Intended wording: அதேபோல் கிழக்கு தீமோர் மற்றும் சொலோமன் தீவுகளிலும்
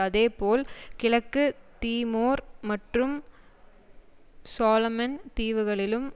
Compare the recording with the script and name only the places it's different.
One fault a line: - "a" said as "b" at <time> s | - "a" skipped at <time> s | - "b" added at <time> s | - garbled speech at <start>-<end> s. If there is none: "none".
none